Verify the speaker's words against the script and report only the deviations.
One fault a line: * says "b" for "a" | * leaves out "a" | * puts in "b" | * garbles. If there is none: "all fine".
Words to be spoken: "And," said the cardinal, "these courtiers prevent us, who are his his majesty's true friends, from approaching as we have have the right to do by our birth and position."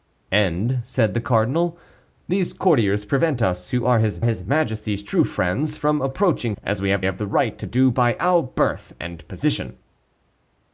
all fine